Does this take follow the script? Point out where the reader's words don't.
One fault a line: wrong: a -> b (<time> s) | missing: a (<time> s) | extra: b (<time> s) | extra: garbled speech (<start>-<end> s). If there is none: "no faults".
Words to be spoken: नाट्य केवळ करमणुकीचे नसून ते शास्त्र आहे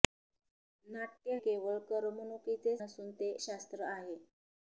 no faults